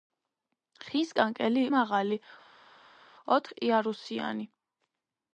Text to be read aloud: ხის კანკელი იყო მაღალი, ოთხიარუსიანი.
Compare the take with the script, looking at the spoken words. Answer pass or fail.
fail